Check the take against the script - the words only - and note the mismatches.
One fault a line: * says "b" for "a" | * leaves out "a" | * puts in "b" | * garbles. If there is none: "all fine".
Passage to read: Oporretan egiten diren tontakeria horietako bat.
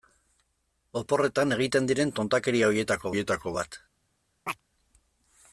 * puts in "horietako"